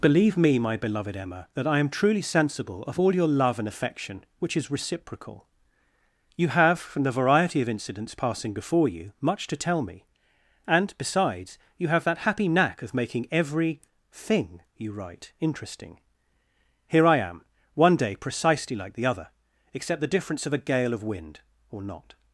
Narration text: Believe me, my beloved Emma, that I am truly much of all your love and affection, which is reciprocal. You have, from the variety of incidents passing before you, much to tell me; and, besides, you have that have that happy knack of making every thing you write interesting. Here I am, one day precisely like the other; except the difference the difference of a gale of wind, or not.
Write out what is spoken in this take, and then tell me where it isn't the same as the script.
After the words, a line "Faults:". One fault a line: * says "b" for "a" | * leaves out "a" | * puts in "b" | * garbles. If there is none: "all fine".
Believe me, my beloved Emma, that I am truly sensible of all your love and affection, which is reciprocal. You have, from the variety of incidents passing before you, much to tell me; and, besides, you have that happy knack of making every thing you write interesting. Here I am, one day precisely like the other; except the difference of a gale of wind, or not.
Faults:
* says "sensible" for "much"
* leaves out "have that"
* leaves out "the difference"